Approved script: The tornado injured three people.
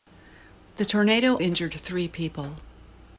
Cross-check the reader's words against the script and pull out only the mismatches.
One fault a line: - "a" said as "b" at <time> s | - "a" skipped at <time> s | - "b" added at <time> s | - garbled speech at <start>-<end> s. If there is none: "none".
none